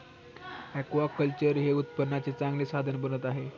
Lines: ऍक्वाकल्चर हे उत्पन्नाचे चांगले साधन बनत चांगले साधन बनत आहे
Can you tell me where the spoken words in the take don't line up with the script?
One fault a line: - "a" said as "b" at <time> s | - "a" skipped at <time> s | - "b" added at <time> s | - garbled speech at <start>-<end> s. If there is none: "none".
- "चांगले साधन बनत" skipped at 3.2 s